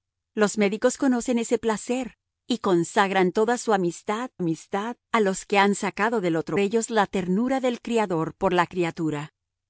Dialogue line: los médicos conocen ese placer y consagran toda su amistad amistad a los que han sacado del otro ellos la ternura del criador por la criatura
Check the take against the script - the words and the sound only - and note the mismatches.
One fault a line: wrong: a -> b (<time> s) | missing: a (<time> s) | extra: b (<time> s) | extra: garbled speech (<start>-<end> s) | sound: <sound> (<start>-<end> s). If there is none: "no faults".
no faults